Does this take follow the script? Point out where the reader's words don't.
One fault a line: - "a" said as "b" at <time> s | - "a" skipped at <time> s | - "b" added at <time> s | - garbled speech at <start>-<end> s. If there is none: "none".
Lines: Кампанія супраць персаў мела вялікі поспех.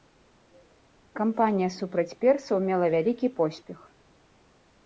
none